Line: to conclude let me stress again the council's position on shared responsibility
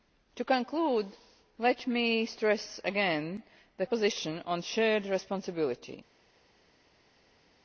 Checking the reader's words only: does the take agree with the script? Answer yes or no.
no